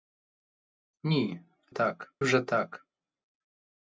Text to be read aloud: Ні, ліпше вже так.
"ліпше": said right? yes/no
no